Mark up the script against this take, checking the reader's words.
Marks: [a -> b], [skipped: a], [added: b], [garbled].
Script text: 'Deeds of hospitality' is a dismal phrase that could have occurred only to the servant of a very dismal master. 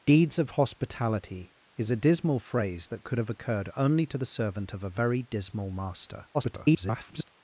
'Deeds of hospitality' is a dismal phrase that could have occurred only to the servant of a very dismal master. [garbled]